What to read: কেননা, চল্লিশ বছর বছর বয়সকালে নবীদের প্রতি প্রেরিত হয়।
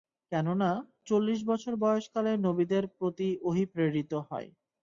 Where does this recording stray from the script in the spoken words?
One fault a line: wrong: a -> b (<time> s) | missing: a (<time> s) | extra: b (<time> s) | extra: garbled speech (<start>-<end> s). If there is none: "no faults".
missing: বছর (1.7 s)
extra: ওহী (3.4 s)